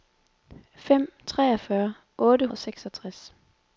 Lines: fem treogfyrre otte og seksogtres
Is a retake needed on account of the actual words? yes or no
no